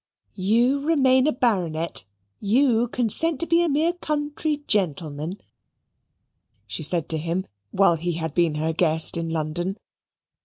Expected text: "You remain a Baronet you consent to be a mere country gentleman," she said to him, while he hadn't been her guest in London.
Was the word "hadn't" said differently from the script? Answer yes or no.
yes